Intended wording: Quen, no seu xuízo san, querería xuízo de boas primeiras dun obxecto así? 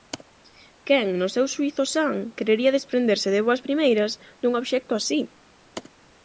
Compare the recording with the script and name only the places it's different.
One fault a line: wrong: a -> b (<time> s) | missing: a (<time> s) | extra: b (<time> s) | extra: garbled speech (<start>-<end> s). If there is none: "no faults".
wrong: xuízo -> desprenderse (2.8 s)